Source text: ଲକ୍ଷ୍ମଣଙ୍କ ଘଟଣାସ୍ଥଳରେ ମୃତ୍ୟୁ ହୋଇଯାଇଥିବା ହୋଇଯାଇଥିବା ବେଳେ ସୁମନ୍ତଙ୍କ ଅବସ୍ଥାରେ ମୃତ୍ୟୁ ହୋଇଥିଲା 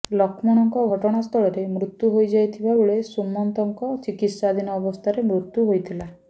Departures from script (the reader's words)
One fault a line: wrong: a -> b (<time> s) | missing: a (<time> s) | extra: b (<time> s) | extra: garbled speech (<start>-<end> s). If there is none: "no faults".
missing: ହୋଇଯାଇଥିବା (2.8 s)
extra: ଚିକିତ୍ସାଧୀନ (4.0 s)